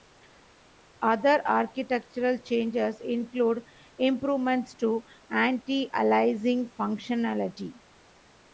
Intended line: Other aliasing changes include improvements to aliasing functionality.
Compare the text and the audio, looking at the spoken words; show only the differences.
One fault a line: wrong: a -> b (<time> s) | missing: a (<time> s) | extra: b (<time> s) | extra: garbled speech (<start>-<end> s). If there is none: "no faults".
wrong: aliasing -> architectural (1.4 s)
extra: anti (5.3 s)